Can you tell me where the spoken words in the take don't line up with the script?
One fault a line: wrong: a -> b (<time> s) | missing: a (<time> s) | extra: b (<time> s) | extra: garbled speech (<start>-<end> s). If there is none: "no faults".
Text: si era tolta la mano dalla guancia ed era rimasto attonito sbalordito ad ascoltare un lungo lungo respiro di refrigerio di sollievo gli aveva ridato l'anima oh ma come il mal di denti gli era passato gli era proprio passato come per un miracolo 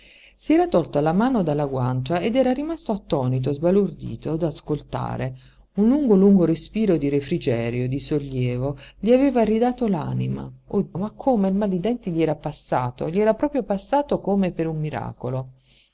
no faults